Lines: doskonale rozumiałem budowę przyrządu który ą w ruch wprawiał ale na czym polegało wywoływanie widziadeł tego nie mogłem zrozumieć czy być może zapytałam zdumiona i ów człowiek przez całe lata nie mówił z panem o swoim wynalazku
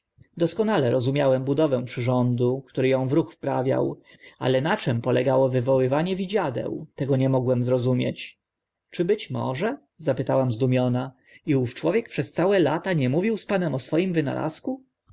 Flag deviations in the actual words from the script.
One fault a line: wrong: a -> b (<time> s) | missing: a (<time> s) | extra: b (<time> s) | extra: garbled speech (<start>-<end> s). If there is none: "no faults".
no faults